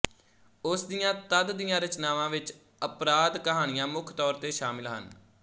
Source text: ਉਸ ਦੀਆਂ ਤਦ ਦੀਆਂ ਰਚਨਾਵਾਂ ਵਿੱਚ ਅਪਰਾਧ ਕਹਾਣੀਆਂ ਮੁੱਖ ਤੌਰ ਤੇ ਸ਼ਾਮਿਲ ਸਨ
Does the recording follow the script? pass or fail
fail